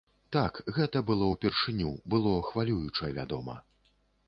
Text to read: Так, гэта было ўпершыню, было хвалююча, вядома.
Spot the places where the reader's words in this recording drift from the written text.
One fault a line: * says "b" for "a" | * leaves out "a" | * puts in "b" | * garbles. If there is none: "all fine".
all fine